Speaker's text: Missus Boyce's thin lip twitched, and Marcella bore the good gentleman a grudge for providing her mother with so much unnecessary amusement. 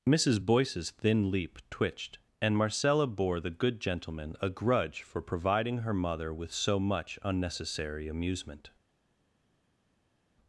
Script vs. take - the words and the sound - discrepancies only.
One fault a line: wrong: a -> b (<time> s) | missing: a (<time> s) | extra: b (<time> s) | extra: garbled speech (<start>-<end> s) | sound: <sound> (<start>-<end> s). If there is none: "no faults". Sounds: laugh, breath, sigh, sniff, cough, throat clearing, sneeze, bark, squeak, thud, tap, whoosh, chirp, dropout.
wrong: lip -> leap (1.3 s)